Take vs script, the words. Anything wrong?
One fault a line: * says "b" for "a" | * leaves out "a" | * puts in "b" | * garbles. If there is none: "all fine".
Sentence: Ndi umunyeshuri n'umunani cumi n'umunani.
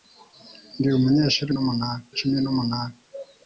all fine